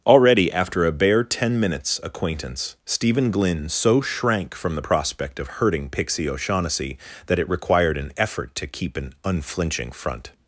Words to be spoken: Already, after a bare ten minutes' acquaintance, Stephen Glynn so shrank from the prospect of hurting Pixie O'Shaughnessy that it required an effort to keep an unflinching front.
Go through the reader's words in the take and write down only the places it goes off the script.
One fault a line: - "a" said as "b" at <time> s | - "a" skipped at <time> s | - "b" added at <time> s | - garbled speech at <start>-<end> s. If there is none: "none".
none